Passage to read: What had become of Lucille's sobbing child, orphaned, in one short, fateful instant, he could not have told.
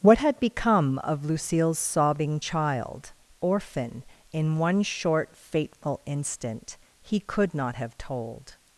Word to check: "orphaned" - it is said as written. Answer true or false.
false